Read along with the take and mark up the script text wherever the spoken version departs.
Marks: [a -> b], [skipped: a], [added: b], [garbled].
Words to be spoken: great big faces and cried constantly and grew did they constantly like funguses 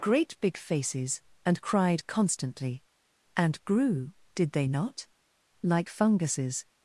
great big faces and cried constantly and grew did they [constantly -> not] like funguses